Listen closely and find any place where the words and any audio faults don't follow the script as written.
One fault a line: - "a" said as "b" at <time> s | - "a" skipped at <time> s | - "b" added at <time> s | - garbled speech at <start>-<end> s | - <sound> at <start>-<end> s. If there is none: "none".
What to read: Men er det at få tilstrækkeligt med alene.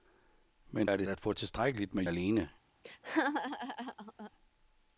- laugh at 2.8-4.3 s